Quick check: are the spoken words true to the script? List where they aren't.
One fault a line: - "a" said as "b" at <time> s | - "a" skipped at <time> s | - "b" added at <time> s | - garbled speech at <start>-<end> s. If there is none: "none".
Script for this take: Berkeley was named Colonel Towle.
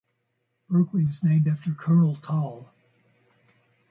- "after" added at 1.5 s